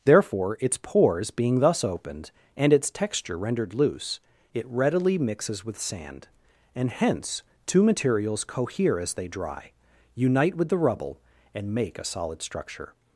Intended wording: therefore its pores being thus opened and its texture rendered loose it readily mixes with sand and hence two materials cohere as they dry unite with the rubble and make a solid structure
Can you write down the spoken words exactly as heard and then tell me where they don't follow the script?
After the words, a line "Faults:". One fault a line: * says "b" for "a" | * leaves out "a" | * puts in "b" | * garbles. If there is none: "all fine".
therefore its pores being thus opened and its texture rendered loose it readily mixes with sand and hence two materials cohere as they dry unite with the rubble and make a solid structure
Faults:
all fine